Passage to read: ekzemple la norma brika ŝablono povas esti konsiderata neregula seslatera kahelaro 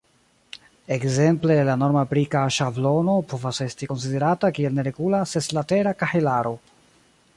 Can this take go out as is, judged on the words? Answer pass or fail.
fail